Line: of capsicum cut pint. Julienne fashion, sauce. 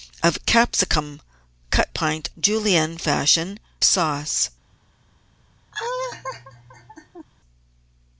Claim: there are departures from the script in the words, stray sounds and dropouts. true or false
true